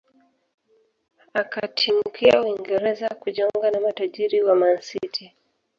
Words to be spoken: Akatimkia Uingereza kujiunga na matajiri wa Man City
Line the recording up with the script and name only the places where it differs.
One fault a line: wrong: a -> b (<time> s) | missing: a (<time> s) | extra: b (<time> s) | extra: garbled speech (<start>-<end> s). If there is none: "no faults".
no faults